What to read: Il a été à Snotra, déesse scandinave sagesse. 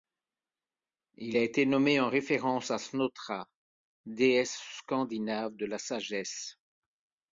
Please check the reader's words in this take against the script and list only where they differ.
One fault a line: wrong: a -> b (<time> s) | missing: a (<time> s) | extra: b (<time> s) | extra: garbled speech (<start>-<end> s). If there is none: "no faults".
extra: nommé en référence (1.7 s)
extra: de la (5.6 s)